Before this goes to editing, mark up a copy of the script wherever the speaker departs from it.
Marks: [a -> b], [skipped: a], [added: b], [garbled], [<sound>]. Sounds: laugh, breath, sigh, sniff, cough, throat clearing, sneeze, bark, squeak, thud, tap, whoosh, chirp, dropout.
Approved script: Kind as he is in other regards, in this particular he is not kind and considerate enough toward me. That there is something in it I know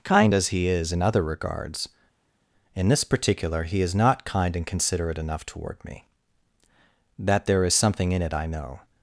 Kind as he is in other regards, in this particular he is not kind and considerate enough toward me. That there is something in it I know